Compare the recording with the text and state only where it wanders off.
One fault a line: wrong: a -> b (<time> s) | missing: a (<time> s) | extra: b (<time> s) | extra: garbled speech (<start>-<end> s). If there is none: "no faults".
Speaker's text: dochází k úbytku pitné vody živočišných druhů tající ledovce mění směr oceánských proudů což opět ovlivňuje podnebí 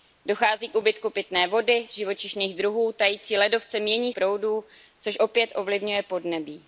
missing: směr oceánských (4.1 s)